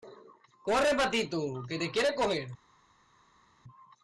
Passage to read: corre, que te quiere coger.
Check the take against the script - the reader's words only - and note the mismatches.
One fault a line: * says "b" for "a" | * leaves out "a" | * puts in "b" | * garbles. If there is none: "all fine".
* puts in "patito"